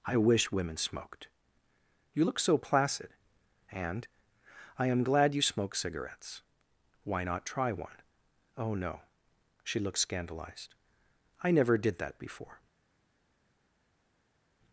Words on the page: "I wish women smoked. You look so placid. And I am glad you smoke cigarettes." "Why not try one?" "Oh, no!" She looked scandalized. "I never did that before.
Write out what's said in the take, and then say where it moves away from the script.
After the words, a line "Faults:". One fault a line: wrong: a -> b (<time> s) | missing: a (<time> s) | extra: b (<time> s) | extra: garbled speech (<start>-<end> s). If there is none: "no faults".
"I wish women smoked. You look so placid. And I am glad you smoke cigarettes." "Why not try one?" "Oh, no!" She looked scandalized. "I never did that before.
Faults:
no faults